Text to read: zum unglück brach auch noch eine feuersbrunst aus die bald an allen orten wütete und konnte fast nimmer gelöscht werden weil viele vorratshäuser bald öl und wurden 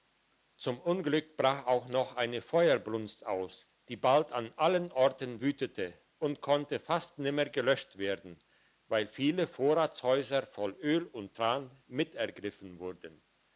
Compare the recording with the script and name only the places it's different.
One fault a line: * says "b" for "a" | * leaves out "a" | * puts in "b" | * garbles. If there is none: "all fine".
* says "voll" for "bald"
* puts in "tran mit ergriffen"